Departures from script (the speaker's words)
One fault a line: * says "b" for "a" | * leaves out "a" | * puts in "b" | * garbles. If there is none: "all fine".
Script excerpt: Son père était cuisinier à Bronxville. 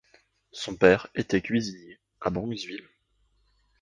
all fine